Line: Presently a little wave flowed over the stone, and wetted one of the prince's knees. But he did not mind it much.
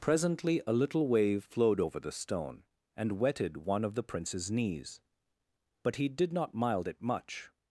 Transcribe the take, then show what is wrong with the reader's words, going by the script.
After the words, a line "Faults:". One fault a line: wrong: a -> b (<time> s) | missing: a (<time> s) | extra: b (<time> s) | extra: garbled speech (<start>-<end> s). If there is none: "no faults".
Presently a little wave flowed over the stone, and wetted one of the prince's knees. But he did not mild it much.
Faults:
wrong: mind -> mild (6.5 s)